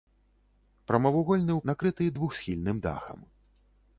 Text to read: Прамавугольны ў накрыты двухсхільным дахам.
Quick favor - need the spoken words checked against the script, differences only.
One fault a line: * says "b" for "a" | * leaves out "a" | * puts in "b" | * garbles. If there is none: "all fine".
all fine